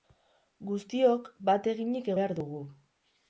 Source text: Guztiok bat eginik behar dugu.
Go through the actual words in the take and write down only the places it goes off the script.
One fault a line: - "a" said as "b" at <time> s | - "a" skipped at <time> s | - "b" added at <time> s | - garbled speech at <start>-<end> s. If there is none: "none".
none